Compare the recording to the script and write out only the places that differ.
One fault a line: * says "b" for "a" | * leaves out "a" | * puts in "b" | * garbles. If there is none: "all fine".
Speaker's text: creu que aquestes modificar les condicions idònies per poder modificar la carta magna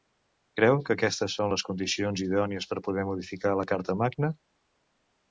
* says "són" for "modificar"